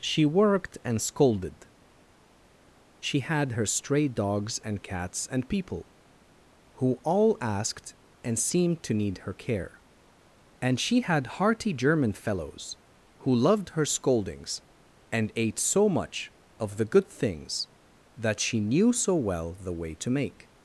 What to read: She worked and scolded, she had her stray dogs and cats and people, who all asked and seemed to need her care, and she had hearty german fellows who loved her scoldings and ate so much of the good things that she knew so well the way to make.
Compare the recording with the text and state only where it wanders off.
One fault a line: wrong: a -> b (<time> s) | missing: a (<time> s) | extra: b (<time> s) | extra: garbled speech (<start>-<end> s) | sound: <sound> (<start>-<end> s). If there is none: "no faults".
no faults